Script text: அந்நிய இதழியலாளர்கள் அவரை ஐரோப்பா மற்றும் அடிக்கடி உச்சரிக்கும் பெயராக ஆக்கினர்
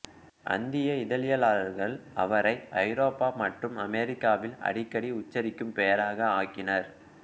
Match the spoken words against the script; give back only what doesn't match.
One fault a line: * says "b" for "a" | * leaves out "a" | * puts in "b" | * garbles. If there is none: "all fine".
* puts in "அமெரிக்காவில்"